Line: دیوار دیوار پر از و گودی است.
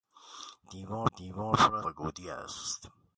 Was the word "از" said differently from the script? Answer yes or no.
no